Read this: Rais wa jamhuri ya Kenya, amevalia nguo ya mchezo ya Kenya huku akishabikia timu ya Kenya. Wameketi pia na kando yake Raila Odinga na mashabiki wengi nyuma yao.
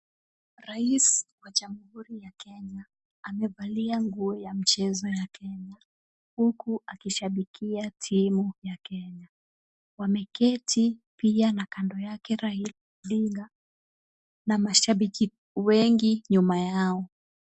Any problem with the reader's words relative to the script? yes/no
no